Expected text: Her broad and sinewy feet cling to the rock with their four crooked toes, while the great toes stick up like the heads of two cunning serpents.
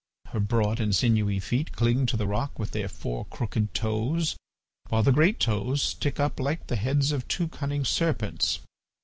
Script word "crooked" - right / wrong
right